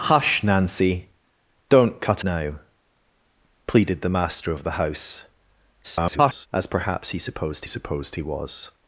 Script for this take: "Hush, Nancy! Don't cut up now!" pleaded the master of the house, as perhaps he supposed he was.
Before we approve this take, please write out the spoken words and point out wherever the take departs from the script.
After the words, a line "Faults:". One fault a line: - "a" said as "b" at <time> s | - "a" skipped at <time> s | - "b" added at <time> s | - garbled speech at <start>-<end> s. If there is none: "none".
"Hush, Nancy! Don't cut now!" pleaded the master of the house, [garbled] as perhaps he supposed supposed he was.
Faults:
- "up" skipped at 2.2 s
- garbled speech at 5.8-6.5 s
- "supposed" added at 7.7 s